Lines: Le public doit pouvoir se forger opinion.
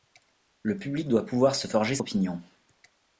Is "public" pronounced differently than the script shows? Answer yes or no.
no